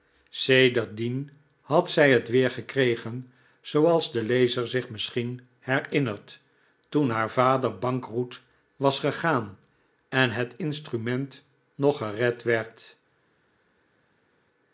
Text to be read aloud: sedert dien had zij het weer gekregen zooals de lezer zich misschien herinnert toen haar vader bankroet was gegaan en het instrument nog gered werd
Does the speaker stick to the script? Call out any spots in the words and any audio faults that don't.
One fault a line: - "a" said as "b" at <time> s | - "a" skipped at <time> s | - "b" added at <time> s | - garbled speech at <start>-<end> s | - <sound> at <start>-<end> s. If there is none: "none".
none